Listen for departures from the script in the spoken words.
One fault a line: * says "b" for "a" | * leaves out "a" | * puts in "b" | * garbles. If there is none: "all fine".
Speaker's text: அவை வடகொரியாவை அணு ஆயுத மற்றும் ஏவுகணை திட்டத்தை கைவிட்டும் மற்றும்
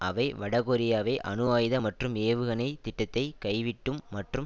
all fine